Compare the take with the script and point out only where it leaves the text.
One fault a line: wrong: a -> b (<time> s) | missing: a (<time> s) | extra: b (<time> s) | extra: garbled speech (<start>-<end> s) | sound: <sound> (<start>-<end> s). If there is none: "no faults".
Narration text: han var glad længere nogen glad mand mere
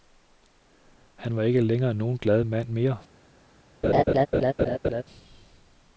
wrong: glad -> ikke (1.4 s)
sound: laugh (3.8-5.0 s)